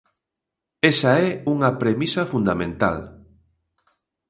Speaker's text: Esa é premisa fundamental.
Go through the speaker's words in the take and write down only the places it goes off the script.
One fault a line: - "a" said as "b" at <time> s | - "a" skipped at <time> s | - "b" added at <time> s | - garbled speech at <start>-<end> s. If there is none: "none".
- "unha" added at 1.5 s